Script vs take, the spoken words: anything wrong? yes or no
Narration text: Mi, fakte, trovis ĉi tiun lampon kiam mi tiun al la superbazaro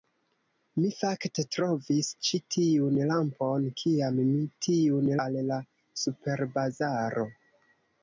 no